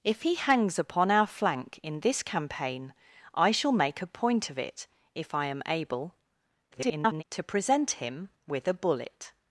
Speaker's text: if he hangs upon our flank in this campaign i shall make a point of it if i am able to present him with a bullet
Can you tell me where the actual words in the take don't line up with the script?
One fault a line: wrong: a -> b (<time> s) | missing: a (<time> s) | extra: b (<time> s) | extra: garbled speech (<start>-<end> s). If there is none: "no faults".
extra: garbled speech (6.7-7.2 s)